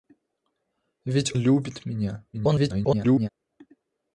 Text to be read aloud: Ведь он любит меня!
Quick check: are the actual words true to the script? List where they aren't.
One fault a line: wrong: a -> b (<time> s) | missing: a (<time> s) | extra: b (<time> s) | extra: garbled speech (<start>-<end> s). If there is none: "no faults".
missing: он (1.3 s)
extra: garbled speech (2.3-3.3 s)